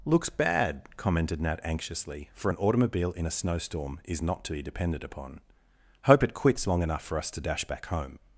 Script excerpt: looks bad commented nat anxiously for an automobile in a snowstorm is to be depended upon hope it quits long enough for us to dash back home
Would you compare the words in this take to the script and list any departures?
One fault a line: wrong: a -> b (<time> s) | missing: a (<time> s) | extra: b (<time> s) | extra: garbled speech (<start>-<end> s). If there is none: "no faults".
extra: not (4.2 s)